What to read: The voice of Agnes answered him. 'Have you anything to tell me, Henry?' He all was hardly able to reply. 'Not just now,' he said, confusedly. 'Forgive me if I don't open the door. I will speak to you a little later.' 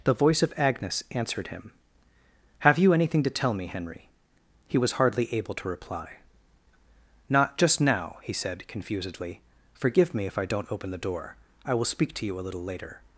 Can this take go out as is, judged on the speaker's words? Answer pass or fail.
fail